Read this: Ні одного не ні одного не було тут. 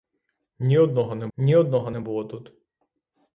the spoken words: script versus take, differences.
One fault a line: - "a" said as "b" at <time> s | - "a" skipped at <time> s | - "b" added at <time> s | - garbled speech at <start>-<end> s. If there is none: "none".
none